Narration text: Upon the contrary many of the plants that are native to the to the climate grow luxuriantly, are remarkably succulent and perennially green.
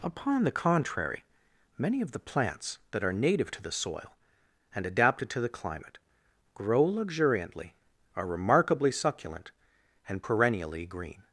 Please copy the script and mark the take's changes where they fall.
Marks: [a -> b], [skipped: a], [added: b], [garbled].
Upon the contrary many of the plants that are native to the [added: soil and adapted] to the climate grow luxuriantly, are remarkably succulent and perennially green.